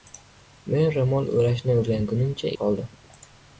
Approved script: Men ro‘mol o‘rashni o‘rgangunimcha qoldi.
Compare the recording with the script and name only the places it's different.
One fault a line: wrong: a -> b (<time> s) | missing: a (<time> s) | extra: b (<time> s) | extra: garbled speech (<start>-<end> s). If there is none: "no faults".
no faults